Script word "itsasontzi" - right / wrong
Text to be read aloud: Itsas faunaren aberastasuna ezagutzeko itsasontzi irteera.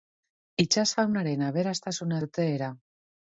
wrong